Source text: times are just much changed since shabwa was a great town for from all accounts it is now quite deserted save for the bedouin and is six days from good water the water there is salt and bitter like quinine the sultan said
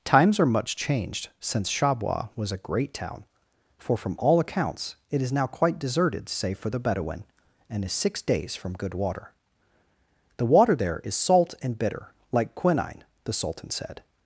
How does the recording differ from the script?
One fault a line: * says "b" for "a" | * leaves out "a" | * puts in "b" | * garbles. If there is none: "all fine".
* leaves out "just"